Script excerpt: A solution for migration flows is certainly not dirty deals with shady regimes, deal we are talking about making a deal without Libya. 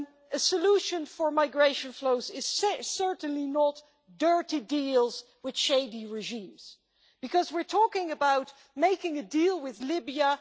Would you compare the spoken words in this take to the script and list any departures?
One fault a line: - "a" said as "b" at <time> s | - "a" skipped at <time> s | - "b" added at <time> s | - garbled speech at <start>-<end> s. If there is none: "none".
- "deal" said as "because" at 7.2 s
- "without" said as "with" at 9.6 s